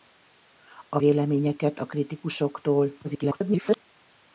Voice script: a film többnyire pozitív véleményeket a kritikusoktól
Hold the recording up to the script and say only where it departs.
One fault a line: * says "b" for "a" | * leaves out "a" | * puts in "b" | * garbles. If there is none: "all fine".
* leaves out "film többnyire pozitív"
* garbles